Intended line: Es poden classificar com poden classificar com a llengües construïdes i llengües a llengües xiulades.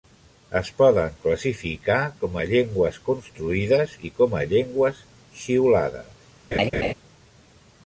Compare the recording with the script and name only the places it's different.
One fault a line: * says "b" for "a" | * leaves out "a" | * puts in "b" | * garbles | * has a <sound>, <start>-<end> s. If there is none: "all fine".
* leaves out "poden classificar com"
* says "com" for "llengües"
* has a laugh, 6.5-6.9 s